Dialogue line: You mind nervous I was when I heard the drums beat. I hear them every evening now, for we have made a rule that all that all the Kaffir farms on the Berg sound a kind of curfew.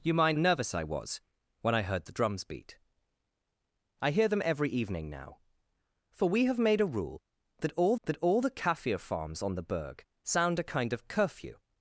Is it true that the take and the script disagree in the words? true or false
false